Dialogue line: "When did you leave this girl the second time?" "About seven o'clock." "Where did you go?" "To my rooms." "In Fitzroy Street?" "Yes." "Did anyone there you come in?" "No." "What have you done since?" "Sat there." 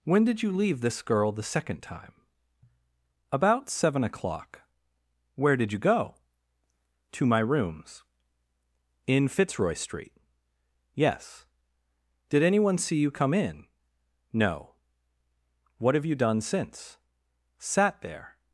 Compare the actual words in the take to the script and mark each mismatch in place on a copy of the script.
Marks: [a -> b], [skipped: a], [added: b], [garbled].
"When did you leave this girl the second time?" "About seven o'clock." "Where did you go?" "To my rooms." "In Fitzroy Street?" "Yes." "Did anyone [there -> see] you come in?" "No." "What have you done since?" "Sat there."